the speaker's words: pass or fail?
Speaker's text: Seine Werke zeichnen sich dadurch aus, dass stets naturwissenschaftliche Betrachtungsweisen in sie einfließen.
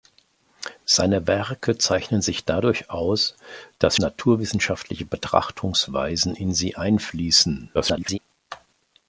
fail